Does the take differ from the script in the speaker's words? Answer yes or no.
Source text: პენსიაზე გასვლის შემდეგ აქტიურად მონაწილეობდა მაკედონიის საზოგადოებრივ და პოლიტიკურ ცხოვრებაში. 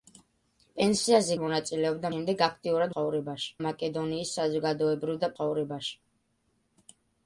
yes